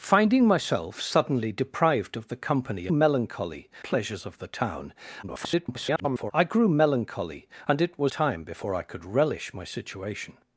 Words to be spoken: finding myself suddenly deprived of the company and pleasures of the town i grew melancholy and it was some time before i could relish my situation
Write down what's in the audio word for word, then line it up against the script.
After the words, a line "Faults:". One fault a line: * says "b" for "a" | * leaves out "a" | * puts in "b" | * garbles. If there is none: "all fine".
finding myself suddenly deprived of the company melancholy pleasures of the town [garbled] i grew melancholy and it was time before i could relish my situation
Faults:
* says "melancholy" for "and"
* garbles
* leaves out "some"